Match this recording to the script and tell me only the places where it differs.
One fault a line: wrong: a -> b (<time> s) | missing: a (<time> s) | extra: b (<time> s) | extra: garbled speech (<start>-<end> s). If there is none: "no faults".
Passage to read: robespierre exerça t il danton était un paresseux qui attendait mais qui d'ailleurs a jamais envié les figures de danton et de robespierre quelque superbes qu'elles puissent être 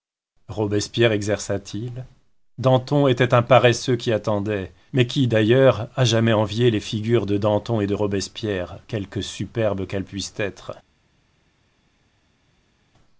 no faults